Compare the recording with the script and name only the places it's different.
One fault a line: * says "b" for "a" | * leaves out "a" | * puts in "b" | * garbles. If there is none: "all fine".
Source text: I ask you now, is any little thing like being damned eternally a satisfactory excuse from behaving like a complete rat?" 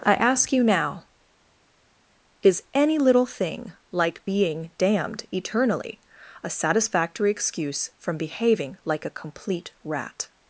all fine